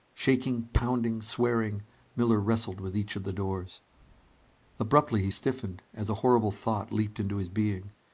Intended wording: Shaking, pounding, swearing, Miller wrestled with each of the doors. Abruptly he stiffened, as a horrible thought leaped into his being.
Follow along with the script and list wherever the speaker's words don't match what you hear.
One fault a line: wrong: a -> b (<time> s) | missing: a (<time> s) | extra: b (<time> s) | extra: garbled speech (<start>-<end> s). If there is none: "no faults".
no faults